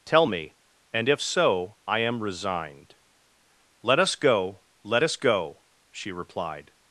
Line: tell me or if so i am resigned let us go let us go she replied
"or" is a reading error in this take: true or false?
true